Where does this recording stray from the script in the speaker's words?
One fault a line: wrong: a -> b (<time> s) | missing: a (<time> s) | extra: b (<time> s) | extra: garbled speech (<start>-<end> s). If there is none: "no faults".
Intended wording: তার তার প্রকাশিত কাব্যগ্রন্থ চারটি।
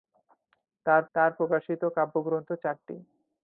no faults